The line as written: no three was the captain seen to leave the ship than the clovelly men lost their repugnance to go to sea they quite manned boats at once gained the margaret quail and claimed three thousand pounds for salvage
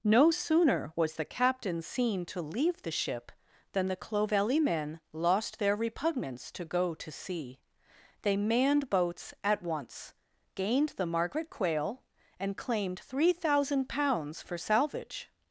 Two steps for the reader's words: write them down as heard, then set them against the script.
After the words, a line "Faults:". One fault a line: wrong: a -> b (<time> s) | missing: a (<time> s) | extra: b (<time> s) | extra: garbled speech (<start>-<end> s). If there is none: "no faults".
no sooner was the captain seen to leave the ship than the clovelly men lost their repugnance to go to sea they manned boats at once gained the margaret quail and claimed three thousand pounds for salvage
Faults:
wrong: three -> sooner (0.3 s)
missing: quite (8.4 s)